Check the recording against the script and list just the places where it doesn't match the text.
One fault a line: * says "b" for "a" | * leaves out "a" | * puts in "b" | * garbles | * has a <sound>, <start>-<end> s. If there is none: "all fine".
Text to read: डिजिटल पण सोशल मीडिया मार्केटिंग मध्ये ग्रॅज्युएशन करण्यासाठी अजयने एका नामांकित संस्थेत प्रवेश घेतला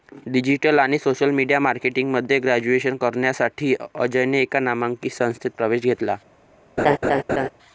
* says "आणि" for "पण"
* has a laugh, 6.8-7.5 s